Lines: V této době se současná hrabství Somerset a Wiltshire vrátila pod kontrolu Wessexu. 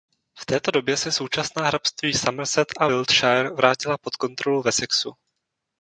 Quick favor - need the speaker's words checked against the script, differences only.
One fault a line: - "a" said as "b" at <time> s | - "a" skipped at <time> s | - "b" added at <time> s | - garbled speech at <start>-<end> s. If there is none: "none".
none